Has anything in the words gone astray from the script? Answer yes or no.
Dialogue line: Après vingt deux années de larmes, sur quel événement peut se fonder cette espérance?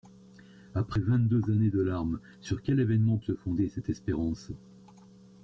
yes